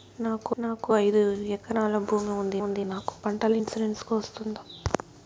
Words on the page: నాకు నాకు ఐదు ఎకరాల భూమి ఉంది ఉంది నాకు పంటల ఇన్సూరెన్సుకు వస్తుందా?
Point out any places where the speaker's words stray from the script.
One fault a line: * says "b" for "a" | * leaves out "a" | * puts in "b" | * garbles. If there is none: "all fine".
all fine